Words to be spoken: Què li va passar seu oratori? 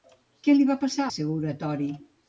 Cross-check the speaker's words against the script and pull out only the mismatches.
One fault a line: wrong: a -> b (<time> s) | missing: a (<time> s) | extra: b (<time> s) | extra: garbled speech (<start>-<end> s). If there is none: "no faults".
no faults